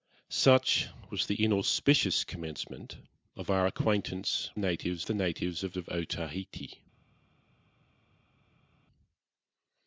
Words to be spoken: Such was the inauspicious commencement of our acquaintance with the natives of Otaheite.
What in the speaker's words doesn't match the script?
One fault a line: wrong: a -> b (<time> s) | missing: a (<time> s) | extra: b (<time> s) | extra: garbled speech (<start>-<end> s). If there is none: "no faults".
wrong: with -> natives (4.6 s)
extra: of (5.8 s)